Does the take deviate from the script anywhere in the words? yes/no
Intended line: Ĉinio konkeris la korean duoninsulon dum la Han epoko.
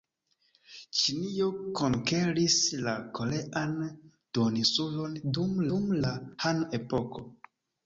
yes